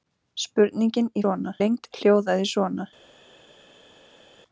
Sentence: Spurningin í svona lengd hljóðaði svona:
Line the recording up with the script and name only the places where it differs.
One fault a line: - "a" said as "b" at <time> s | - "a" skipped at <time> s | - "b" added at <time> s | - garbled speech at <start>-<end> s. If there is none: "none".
none